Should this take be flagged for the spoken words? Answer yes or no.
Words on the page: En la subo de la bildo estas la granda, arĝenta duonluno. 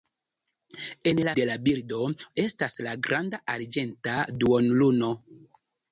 yes